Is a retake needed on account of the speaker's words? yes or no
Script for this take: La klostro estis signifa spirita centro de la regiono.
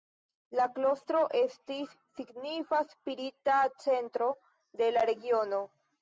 no